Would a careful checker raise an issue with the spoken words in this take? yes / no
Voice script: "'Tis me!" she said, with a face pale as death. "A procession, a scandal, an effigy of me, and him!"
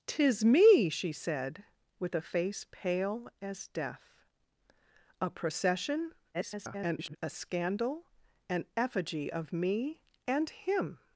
yes